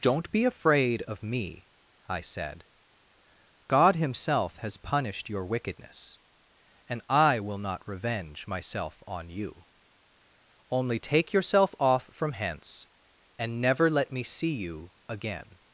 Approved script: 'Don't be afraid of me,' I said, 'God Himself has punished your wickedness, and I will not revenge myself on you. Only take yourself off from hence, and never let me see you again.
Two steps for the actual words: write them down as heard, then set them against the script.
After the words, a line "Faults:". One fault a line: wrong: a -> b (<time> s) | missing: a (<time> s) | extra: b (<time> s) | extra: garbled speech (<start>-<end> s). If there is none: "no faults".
'Don't be afraid of me,' I said, 'God Himself has punished your wickedness, and I will not revenge myself on you. Only take yourself off from hence, and never let me see you again.
Faults:
no faults